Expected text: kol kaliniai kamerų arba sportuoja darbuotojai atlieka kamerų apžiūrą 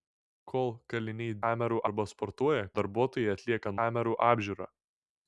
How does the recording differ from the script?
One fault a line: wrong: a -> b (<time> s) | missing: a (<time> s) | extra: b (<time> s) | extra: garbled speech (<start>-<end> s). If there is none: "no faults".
no faults